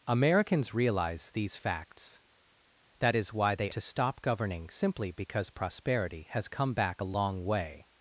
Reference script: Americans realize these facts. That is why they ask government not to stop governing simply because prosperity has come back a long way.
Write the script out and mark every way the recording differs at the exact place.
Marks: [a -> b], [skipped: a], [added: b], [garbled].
Americans realize these facts. That is why they [skipped: ask government not] to stop governing simply because prosperity has come back a long way.